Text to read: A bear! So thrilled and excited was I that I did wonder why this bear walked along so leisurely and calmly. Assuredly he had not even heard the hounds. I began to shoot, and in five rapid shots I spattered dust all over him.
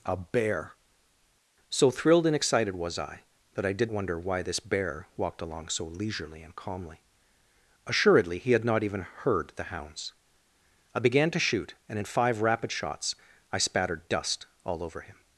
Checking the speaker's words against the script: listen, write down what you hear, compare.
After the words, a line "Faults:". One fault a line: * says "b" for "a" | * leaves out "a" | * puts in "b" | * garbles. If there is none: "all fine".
A bear! So thrilled and excited was I that I did wonder why this bear walked along so leisurely and calmly. Assuredly he had not even heard the hounds. I began to shoot, and in five rapid shots I spattered dust all over him.
Faults:
all fine